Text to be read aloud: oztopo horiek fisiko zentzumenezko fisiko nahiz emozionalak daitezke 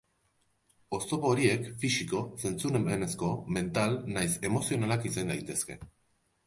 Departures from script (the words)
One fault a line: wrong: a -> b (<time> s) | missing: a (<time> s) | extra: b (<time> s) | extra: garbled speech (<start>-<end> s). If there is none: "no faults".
wrong: fisiko -> mental (3.6 s)
extra: izan (5.1 s)